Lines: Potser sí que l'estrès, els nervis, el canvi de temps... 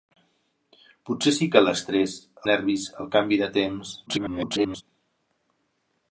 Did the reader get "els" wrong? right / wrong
wrong